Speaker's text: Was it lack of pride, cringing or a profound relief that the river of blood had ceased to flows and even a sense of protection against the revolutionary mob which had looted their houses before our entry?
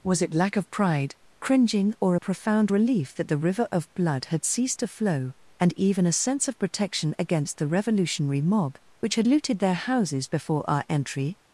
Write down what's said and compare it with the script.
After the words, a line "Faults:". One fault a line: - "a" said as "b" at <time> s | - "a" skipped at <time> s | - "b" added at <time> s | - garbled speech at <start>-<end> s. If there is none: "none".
Was it lack of pride, cringing or a profound relief that the river of blood had ceased to flow and even a sense of protection against the revolutionary mob which had looted their houses before our entry?
Faults:
- "flows" said as "flow" at 4.9 s